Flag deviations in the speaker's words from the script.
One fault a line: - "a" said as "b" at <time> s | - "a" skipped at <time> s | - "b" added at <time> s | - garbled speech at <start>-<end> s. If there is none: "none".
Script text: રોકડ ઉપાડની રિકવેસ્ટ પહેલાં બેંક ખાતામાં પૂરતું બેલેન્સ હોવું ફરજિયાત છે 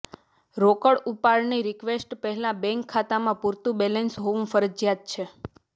none